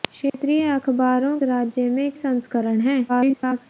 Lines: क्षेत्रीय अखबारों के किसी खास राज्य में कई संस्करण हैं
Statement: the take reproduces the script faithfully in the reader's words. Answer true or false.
false